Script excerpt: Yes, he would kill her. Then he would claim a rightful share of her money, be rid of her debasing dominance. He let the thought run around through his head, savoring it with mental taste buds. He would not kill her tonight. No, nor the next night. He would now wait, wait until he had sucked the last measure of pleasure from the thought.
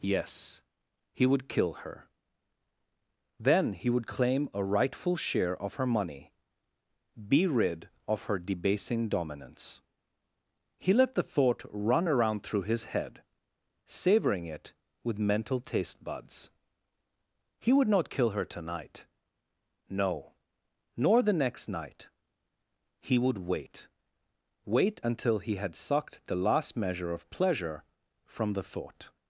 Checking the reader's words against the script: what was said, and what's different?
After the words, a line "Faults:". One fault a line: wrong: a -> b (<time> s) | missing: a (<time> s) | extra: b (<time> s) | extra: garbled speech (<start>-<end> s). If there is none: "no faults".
Yes, he would kill her. Then he would claim a rightful share of her money, be rid of her debasing dominance. He let the thought run around through his head, savoring it with mental taste buds. He would not kill her tonight. No, nor the next night. He would wait, wait until he had sucked the last measure of pleasure from the thought.
Faults:
missing: now (23.4 s)